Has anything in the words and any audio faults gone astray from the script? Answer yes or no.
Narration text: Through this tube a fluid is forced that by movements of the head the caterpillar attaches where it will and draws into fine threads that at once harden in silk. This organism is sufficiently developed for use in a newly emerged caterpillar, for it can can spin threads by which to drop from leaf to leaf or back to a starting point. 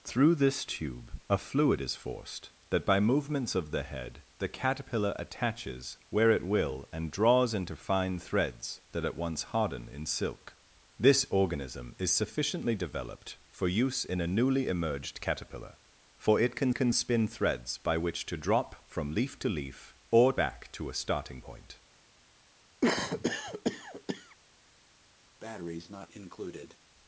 yes